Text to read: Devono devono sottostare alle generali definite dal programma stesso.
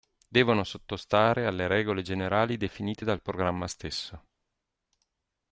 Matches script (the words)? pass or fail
fail